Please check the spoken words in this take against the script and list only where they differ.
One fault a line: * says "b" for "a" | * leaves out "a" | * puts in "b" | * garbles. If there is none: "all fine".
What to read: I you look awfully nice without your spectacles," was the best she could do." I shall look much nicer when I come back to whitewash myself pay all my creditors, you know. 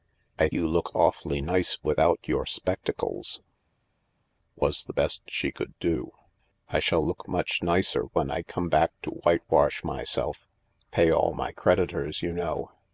all fine